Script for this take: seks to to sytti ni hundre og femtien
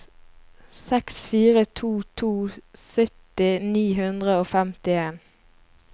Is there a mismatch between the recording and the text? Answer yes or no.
yes